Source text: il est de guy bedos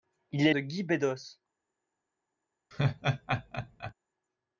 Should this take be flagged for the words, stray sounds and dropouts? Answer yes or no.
yes